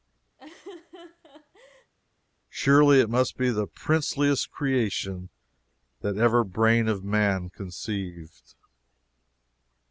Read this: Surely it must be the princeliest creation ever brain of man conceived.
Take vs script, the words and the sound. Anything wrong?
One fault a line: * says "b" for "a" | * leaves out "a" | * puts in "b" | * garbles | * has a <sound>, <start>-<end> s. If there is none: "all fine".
* has a laugh, 0.4-1.9 s
* puts in "that"